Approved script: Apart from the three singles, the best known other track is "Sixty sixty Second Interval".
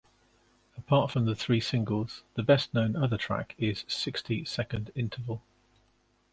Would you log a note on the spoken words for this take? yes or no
yes